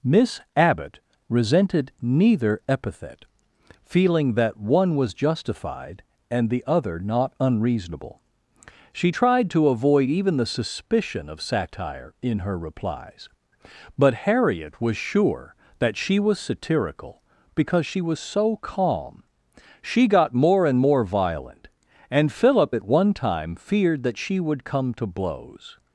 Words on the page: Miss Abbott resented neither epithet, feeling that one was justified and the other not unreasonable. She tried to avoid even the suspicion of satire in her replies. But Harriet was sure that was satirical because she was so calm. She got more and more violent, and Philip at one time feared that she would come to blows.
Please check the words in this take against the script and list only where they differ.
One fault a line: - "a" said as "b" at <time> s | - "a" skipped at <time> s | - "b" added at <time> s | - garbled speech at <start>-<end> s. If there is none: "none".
- "she" added at 16.0 s